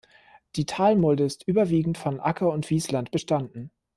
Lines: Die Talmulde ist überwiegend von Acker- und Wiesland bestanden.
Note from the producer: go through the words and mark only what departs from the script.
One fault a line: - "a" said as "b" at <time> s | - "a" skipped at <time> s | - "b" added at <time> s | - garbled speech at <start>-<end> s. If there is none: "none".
none